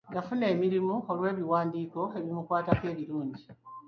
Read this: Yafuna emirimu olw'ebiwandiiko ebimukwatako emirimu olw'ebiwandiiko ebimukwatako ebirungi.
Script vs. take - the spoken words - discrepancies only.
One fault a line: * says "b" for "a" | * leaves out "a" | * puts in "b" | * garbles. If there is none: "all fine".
* leaves out "emirimu olw'ebiwandiiko ebimukwatako"